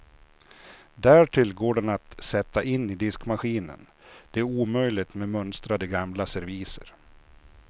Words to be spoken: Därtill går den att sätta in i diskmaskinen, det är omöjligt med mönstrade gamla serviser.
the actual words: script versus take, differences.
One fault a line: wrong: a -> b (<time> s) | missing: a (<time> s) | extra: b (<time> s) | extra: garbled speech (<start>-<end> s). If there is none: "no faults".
no faults